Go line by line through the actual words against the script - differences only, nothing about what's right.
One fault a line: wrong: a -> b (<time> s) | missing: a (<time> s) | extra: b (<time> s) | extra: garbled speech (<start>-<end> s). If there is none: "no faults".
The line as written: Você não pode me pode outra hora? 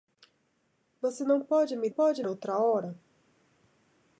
no faults